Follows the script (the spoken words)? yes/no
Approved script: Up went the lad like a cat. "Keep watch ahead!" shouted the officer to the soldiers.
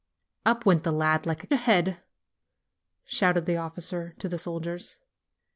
no